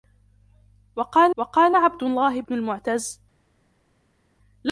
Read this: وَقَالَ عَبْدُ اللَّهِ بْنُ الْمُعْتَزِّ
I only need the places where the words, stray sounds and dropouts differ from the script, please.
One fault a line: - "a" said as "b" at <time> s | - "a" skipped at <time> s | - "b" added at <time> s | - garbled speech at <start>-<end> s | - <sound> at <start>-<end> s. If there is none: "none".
- "وَقَالَ" added at 1.4 s